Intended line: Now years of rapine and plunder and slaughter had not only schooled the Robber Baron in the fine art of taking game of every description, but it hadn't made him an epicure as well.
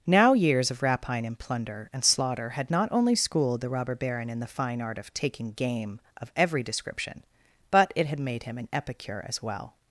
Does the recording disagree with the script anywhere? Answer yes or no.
yes